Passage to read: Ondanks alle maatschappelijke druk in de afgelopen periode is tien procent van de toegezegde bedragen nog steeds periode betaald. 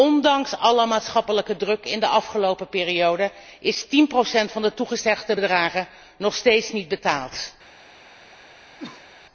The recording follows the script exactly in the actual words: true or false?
false